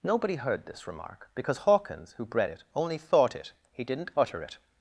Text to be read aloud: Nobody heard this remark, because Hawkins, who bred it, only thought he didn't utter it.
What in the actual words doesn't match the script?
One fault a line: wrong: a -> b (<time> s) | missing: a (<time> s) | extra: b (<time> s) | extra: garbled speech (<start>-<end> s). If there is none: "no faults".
extra: it (3.3 s)